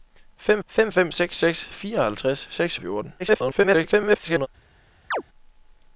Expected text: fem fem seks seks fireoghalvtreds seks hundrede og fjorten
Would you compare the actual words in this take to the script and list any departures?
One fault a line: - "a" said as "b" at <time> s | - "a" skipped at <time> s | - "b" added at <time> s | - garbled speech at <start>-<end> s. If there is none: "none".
- "fem" added at 0.9 s
- "hundrede" skipped at 2.8 s
- garbled speech at 3.2-4.5 s